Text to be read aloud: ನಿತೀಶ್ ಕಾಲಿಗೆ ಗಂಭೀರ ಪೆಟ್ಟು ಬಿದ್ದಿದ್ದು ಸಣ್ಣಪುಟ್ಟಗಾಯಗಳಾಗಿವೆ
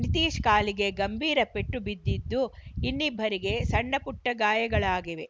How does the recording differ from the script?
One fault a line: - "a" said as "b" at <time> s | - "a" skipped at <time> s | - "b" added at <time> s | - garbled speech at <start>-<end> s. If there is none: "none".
- "ಇನ್ನಿಬ್ಬರಿಗೆ" added at 2.8 s